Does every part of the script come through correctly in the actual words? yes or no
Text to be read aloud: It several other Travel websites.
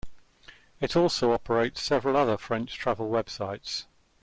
no